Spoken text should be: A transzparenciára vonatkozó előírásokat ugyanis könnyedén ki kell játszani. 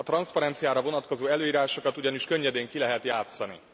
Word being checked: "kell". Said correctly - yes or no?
no